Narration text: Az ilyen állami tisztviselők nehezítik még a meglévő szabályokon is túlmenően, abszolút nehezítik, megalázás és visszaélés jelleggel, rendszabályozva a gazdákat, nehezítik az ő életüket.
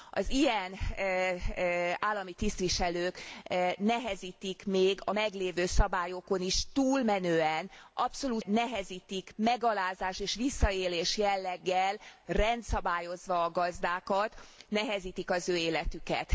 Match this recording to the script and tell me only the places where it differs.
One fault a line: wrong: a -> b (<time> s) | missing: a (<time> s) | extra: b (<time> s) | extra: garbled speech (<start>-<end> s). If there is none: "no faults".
no faults